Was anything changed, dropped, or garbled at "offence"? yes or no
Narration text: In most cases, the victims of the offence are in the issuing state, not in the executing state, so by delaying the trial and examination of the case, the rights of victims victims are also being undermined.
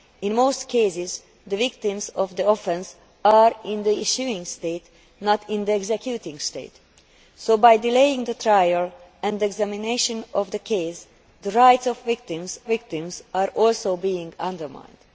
no